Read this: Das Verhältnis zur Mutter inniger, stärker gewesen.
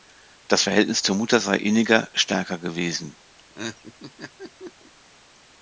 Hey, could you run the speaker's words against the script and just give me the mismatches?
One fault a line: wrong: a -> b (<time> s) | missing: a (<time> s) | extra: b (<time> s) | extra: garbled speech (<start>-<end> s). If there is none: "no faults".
extra: sei (1.4 s)